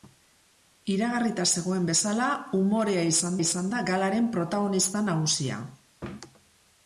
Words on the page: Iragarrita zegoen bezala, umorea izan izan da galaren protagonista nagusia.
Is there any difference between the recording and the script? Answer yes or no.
no